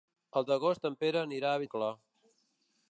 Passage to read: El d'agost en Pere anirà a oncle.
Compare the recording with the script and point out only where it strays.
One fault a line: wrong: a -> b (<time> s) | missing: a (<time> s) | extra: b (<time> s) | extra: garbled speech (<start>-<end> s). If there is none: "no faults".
no faults